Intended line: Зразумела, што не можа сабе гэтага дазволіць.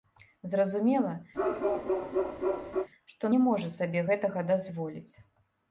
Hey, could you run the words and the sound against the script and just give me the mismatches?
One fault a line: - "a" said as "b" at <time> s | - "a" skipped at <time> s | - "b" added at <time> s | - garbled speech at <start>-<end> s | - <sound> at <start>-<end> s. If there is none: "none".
- bark at 1.3-2.9 s